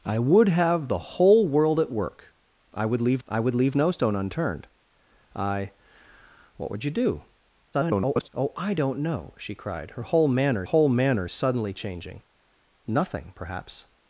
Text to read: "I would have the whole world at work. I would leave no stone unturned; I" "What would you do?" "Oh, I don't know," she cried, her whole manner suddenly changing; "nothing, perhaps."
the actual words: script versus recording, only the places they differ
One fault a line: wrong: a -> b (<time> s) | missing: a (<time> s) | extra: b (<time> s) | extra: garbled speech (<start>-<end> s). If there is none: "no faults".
extra: I would leave (3.3 s)
extra: garbled speech (7.7-8.3 s)
extra: whole manner (10.6 s)